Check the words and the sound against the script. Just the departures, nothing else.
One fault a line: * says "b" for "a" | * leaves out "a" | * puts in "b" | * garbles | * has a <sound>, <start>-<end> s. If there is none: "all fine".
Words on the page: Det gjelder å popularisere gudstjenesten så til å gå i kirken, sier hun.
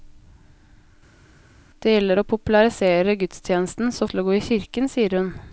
all fine